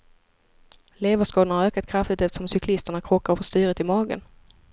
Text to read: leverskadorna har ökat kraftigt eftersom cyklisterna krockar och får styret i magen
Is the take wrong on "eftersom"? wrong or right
right